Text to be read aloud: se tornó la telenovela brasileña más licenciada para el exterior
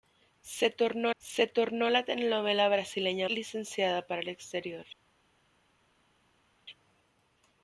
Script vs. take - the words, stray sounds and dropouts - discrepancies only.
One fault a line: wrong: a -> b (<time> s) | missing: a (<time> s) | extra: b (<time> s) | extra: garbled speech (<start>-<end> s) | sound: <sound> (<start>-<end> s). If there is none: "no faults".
extra: se tornó (1.2 s)
missing: más (3.3 s)